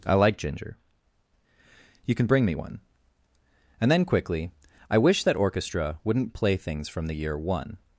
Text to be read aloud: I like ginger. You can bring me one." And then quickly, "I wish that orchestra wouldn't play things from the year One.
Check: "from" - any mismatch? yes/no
no